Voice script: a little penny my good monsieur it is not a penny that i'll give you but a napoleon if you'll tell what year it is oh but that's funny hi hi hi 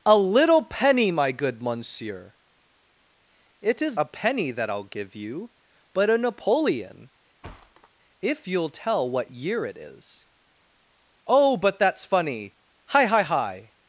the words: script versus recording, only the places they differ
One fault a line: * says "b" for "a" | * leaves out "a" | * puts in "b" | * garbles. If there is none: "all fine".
* leaves out "not"